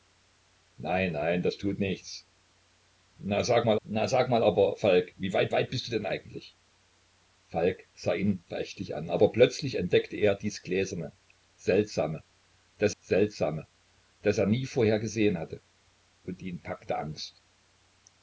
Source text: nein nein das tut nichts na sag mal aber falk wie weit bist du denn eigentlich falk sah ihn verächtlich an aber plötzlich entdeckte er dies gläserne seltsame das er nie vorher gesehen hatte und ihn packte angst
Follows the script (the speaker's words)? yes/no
no